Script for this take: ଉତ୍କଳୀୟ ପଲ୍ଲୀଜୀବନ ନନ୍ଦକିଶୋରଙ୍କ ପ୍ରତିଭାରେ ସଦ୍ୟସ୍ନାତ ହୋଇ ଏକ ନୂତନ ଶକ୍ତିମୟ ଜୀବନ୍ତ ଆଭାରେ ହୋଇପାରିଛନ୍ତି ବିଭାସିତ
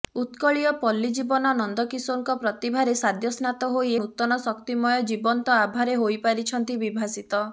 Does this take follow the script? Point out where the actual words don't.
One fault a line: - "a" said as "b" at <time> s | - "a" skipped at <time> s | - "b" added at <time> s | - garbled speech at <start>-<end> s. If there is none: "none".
- "ଏକ" skipped at 3.9 s